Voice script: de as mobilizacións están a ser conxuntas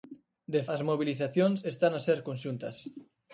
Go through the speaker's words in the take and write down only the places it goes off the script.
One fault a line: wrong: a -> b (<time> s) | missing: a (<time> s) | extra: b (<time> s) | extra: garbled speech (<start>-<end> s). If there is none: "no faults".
no faults